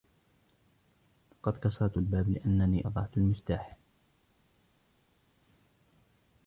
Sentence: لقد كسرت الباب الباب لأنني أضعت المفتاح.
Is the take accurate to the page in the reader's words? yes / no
no